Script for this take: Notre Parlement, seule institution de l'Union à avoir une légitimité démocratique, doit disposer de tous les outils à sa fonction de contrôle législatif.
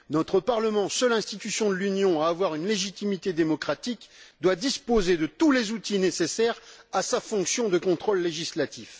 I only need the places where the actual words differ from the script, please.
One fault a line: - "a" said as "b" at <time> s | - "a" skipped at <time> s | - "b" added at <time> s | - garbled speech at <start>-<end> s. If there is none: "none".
- "nécessaires" added at 6.0 s